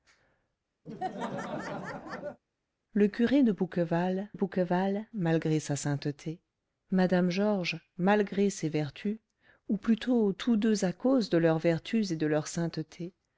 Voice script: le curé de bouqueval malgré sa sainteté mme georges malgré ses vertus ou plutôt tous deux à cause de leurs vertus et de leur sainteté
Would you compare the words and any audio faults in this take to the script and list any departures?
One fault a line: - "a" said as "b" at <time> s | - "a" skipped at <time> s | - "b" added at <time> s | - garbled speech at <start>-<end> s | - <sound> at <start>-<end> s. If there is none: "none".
- laugh at 0.9-2.4 s
- "bouqueval" added at 4.3 s